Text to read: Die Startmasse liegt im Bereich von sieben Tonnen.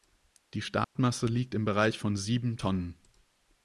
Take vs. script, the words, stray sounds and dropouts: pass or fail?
fail